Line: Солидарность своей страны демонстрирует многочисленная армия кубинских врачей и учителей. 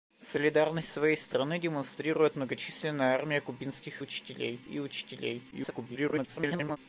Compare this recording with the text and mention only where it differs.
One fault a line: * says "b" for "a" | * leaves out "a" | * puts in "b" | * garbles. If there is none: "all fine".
* says "учителей" for "врачей"
* garbles